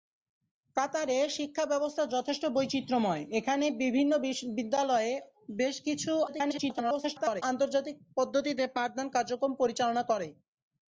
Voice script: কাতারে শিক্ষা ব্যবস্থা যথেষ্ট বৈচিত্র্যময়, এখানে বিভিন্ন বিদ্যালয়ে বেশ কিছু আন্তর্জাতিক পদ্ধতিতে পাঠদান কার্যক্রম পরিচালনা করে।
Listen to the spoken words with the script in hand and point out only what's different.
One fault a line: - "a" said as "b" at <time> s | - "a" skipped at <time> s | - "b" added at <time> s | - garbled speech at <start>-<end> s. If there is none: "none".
- garbled speech at 6.3-7.4 s